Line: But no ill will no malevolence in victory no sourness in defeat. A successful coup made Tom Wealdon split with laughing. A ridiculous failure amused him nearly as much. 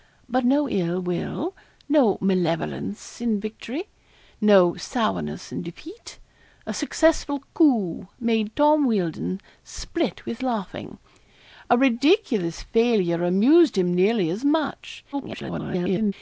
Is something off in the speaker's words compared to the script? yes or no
yes